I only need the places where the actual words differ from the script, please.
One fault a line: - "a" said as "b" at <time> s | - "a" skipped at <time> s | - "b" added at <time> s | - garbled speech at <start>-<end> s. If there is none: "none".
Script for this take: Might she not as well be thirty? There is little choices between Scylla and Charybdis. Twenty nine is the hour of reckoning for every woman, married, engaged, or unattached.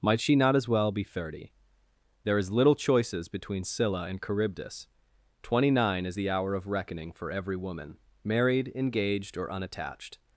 none